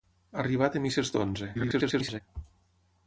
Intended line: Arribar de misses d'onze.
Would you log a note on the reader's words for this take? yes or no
yes